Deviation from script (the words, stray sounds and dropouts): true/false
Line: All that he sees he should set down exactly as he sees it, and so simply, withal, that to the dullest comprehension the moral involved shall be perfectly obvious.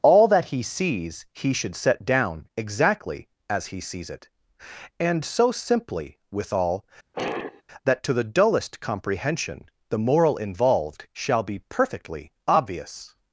true